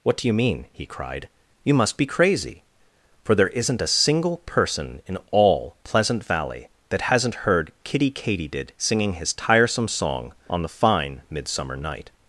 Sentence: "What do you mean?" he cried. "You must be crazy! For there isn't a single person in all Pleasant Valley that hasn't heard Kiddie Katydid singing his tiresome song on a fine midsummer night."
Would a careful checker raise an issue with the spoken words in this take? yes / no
yes